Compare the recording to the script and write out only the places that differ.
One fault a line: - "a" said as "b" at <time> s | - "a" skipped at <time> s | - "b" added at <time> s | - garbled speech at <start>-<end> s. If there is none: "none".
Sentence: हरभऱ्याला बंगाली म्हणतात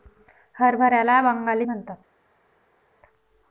none